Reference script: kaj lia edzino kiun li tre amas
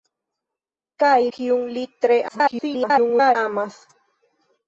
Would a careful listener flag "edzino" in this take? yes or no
yes